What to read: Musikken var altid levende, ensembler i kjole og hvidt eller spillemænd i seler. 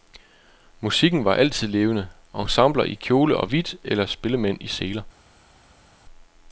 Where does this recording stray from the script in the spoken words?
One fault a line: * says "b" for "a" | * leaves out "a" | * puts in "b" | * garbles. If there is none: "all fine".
all fine